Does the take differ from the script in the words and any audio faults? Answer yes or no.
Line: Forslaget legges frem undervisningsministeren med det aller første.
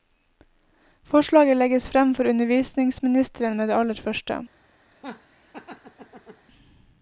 yes